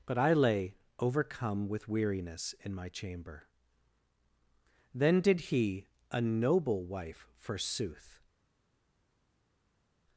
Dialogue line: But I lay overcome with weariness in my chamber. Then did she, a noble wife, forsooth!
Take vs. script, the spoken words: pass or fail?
fail